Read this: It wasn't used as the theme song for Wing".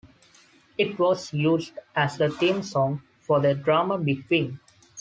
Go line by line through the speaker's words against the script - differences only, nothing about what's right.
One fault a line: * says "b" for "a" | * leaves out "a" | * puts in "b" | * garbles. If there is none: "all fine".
* says "was" for "wasn't"
* puts in "the drama Big"